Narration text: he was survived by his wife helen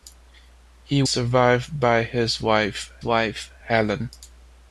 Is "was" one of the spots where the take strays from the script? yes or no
yes